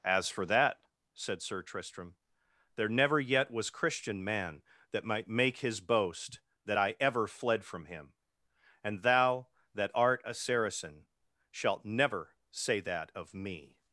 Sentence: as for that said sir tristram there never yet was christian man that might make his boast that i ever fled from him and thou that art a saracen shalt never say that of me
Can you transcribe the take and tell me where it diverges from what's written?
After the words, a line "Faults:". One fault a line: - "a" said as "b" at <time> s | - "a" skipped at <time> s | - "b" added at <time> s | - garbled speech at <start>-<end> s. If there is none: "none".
as for that said sir tristram there never yet was christian man that might make his boast that i ever fled from him and thou that art a saracen shalt never say that of me
Faults:
none